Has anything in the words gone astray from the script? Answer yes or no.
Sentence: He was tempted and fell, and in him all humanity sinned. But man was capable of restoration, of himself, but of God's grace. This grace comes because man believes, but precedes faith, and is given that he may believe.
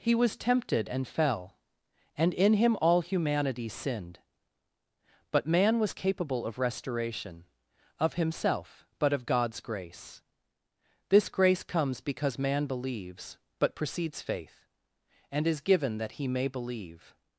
no